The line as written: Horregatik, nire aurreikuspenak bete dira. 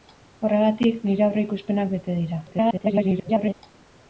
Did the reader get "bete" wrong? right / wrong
right